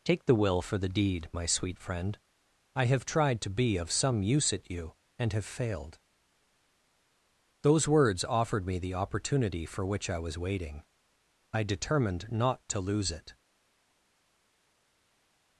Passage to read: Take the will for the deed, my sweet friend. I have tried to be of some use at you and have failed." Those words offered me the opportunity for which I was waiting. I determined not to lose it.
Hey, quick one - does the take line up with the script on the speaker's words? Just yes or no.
yes